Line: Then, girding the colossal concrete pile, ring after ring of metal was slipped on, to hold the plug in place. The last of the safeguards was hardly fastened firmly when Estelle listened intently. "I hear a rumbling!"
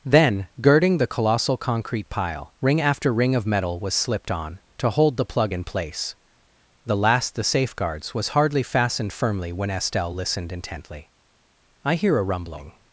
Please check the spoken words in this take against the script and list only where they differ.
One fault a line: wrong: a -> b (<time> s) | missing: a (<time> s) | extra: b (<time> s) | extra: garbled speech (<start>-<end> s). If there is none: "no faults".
missing: of (7.3 s)